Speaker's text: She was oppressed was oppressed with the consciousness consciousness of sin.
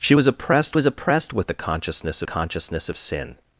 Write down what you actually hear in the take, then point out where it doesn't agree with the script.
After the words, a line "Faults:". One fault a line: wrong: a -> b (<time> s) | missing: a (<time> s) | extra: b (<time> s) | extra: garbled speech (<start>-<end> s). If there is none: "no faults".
She was oppressed was oppressed with the consciousness consciousness of sin.
Faults:
no faults